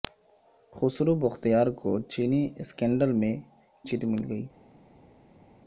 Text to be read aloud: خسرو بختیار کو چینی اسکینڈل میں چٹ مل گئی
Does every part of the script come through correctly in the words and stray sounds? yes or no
yes